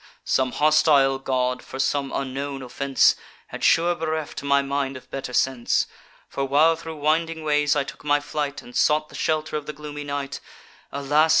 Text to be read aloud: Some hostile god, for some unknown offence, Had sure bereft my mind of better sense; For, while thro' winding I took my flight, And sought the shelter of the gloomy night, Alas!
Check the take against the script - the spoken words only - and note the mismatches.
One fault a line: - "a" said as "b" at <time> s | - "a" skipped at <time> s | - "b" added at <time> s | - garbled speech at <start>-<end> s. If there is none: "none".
- "ways" added at 7.4 s